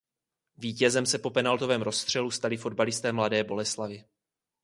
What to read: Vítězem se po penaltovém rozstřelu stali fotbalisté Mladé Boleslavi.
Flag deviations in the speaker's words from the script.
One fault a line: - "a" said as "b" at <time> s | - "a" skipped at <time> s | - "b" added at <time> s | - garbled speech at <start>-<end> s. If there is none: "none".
none